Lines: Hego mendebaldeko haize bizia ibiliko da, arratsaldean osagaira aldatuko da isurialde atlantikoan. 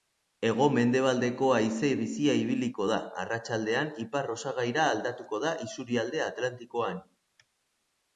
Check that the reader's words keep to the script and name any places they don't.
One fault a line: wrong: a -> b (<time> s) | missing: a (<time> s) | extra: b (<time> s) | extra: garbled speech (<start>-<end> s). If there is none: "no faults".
extra: ipar (4.0 s)